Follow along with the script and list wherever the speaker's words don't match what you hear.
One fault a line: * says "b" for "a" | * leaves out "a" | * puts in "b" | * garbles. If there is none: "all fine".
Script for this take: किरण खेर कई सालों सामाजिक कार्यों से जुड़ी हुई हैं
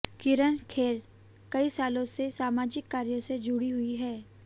* puts in "से"